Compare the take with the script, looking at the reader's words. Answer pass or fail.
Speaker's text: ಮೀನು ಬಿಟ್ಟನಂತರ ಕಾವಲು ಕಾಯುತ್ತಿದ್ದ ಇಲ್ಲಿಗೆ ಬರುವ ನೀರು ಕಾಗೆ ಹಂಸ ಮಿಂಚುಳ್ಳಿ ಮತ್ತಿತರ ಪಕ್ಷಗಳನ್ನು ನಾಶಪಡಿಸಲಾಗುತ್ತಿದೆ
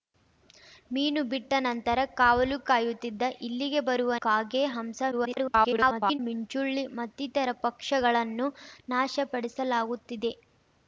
fail